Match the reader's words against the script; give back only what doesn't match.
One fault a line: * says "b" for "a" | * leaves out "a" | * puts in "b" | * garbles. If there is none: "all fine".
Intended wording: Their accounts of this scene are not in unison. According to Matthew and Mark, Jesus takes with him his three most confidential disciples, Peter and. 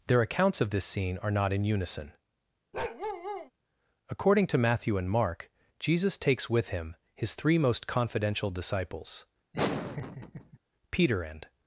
all fine